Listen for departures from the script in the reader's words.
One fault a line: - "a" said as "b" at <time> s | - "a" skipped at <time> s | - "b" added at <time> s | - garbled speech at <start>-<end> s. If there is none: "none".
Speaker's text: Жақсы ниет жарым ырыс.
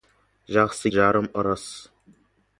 - "ниет" skipped at 0.9 s